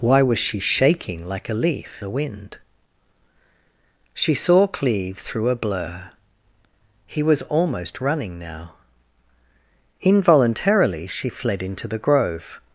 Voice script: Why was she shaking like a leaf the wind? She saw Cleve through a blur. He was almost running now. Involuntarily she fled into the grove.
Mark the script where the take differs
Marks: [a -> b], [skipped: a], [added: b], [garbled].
Why was she shaking like a leaf the wind? She saw Cleve through a blur. He was almost running now. Involuntarily she fled into the grove.